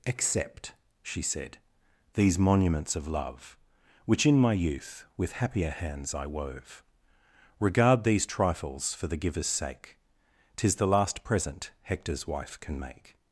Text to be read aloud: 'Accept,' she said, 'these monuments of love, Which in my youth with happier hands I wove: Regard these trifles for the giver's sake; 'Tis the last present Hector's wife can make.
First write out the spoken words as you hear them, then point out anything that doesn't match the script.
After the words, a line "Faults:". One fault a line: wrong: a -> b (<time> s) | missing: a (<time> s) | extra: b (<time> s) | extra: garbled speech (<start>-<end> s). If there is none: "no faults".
'Accept,' she said, 'these monuments of love, Which in my youth with happier hands I wove: Regard these trifles for the giver's sake; 'Tis the last present Hector's wife can make.
Faults:
no faults